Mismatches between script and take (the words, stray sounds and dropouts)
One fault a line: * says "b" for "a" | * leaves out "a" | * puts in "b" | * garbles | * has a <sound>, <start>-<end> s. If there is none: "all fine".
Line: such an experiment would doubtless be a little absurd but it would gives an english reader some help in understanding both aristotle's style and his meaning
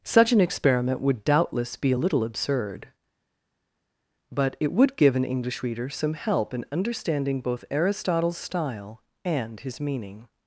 * says "give" for "gives"